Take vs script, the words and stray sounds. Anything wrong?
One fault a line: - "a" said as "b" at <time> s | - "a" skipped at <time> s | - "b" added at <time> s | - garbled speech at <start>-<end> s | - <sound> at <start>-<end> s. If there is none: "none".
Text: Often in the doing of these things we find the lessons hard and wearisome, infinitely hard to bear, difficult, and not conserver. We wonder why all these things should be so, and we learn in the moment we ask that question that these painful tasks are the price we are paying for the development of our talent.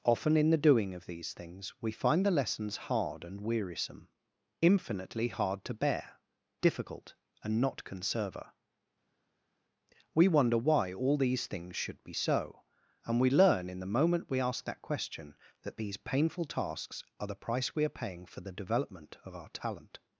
none